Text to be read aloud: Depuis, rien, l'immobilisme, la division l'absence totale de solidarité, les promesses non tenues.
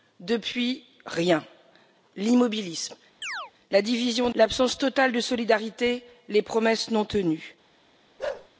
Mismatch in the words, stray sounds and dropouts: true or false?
true